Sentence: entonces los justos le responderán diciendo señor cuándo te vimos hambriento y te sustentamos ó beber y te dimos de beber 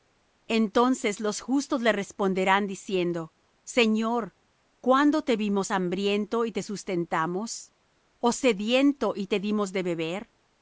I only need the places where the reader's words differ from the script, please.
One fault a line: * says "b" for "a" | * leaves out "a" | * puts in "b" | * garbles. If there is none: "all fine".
* says "sediento" for "beber"